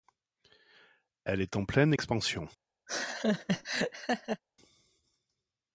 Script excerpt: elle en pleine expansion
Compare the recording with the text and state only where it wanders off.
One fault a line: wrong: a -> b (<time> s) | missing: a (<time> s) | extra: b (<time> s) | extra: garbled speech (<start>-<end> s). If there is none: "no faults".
extra: est (1.4 s)